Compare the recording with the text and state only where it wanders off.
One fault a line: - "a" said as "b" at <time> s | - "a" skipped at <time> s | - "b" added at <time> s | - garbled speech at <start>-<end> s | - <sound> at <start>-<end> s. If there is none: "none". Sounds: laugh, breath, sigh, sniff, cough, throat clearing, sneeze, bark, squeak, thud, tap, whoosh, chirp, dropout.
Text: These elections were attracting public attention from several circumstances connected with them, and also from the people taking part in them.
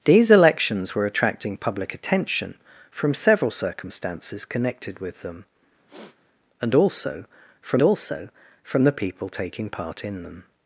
- sniff at 5.9-6.2 s
- "also from" added at 7.8 s